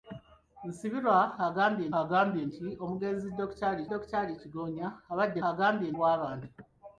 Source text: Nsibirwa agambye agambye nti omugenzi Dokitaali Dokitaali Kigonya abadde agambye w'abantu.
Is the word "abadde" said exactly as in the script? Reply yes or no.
yes